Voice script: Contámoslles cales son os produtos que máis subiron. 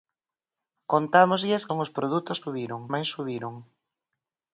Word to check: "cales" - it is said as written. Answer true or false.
false